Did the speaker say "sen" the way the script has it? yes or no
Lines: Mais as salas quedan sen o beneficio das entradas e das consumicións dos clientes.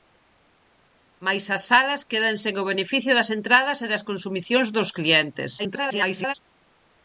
yes